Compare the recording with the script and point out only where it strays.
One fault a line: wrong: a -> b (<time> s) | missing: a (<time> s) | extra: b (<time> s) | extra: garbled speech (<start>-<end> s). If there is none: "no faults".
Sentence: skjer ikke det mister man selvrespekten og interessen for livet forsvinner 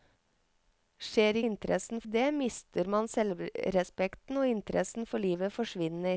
wrong: ikke -> interessen (1.4 s)